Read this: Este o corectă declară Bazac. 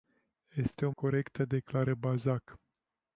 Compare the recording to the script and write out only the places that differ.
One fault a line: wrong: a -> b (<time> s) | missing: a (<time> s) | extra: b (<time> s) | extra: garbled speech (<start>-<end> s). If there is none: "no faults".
no faults